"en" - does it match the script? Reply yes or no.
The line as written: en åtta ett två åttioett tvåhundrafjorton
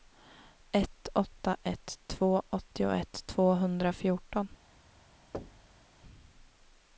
no